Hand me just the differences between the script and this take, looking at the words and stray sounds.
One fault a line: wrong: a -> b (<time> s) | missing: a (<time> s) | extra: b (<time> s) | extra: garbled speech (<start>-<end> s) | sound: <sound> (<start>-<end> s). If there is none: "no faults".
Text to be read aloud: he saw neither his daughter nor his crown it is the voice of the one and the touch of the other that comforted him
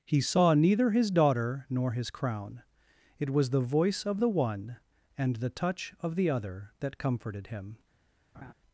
wrong: is -> was (3.3 s)
sound: laugh (8.3-8.5 s)